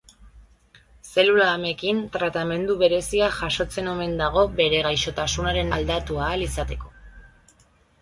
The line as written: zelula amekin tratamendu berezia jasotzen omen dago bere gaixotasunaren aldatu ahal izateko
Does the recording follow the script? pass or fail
pass